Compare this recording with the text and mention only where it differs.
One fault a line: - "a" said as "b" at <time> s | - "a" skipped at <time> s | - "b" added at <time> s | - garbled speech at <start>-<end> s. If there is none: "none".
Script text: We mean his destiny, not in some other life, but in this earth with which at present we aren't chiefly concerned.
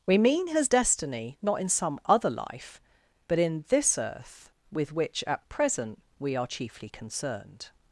- "aren't" said as "are" at 6.3 s